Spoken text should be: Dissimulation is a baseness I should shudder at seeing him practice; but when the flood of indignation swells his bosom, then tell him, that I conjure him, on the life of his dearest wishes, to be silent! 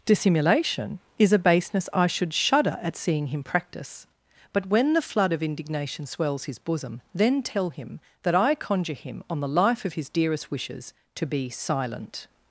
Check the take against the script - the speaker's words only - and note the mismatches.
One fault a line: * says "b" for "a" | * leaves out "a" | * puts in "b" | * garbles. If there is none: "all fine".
all fine